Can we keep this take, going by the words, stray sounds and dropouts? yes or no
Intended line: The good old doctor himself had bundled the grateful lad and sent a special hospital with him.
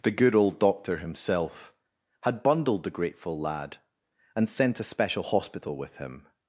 yes